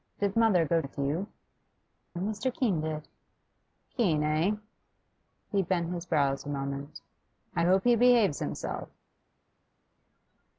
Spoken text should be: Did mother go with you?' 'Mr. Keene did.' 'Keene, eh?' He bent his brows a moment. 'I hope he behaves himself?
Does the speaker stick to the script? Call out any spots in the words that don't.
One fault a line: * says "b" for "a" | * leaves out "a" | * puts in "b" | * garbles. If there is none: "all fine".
all fine